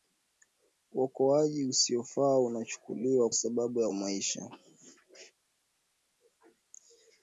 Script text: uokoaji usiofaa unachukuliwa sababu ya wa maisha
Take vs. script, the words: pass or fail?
pass